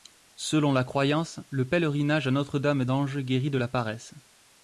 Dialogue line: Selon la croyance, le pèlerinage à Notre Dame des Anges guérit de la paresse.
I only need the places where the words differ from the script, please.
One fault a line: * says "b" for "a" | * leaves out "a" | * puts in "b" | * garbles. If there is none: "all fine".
* leaves out "des"